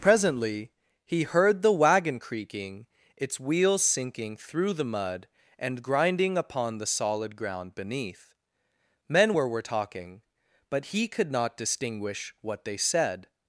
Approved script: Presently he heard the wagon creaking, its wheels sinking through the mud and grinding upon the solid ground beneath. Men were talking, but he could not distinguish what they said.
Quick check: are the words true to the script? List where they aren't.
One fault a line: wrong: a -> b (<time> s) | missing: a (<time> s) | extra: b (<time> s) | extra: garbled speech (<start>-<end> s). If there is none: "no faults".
extra: were (9.5 s)